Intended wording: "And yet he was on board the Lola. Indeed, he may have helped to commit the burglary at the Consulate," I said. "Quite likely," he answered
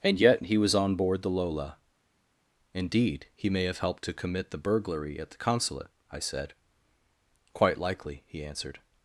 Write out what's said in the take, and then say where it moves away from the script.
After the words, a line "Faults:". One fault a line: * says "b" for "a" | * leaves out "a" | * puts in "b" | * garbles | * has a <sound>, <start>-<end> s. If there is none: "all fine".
"And yet he was on board the Lola. Indeed, he may have helped to commit the burglary at the Consulate," I said. "Quite likely," he answered
Faults:
all fine